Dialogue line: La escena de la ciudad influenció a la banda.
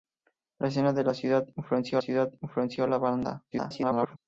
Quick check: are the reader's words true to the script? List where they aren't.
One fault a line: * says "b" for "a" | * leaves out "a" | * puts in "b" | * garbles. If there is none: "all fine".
* puts in "ciudad influenció"
* garbles